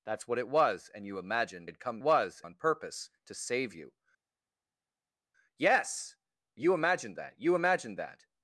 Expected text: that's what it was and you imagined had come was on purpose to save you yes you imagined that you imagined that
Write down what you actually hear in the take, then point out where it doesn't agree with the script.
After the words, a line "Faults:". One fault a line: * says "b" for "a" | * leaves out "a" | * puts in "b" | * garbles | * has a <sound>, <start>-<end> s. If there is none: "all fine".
that's what it was and you imagined had come was on purpose to save you yes you imagined that you imagined that
Faults:
all fine